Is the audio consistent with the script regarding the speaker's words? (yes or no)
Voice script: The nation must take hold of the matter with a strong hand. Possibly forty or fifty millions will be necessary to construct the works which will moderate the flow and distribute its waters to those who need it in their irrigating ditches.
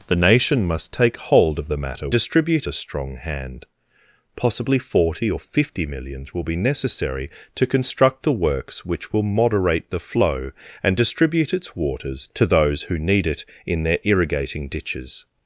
no